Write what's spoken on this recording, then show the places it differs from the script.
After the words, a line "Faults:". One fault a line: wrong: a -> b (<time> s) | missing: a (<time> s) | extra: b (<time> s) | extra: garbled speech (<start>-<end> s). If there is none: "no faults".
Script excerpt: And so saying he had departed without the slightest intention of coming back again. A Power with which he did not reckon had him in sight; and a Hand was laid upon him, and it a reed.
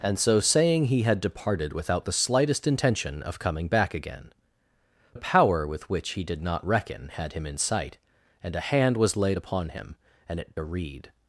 And so saying he had departed without the slightest intention of coming back again. A Power with which he did not reckon had him in sight; and a Hand was laid upon him, and it a reed.
Faults:
no faults